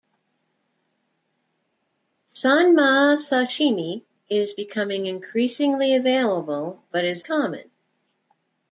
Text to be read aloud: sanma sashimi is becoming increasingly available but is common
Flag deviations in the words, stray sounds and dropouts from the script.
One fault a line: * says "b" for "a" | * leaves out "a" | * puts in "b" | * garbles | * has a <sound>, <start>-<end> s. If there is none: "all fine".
all fine